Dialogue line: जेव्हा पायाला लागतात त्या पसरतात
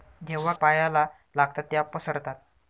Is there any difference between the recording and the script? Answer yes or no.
no